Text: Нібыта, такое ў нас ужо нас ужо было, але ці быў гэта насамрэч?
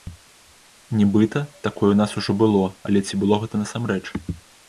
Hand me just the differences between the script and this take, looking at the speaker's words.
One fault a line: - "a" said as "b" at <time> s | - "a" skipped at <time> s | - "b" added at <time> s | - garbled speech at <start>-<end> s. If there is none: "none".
- "нас ужо" skipped at 2.3 s
- "быў" said as "было" at 3.2 s